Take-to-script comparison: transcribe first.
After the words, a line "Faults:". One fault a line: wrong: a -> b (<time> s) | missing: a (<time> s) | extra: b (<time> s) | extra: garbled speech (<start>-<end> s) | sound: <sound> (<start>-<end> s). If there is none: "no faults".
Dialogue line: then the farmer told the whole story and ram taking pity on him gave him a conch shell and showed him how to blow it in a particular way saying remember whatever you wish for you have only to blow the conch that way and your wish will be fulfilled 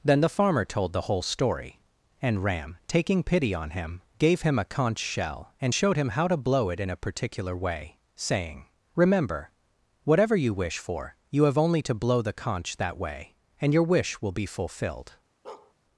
then the farmer told the whole story and ram taking pity on him gave him a conch shell and showed him how to blow it in a particular way saying remember whatever you wish for you have only to blow the conch that way and your wish will be fulfilled
Faults:
sound: bark (15.4-15.7 s)